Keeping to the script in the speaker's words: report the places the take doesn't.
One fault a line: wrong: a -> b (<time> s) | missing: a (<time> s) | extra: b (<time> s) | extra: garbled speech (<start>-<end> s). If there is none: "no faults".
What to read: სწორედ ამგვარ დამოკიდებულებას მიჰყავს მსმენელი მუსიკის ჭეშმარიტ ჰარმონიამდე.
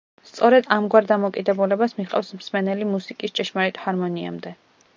no faults